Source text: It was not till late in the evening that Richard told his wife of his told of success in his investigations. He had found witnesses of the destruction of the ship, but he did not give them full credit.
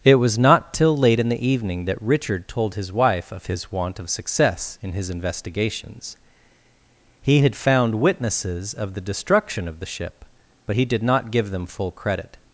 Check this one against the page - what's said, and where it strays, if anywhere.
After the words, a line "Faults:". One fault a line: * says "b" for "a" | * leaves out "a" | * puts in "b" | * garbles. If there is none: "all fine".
It was not till late in the evening that Richard told his wife of his want of success in his investigations. He had found witnesses of the destruction of the ship, but he did not give them full credit.
Faults:
* says "want" for "told"